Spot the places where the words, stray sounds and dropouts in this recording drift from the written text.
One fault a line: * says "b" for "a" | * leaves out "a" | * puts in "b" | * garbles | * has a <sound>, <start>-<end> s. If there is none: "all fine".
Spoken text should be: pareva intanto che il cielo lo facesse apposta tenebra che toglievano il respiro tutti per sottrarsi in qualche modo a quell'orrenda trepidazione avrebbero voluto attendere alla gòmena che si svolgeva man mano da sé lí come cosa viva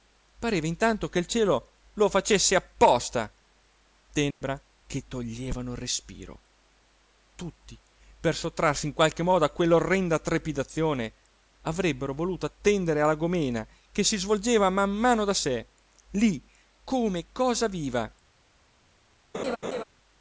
* has a dropout, 4.3-4.4 s
* has a laugh, 19.3-19.8 s